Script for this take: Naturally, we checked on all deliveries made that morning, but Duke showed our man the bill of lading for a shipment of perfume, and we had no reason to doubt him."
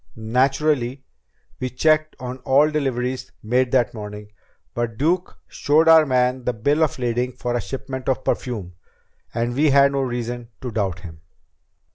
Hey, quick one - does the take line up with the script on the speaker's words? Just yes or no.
yes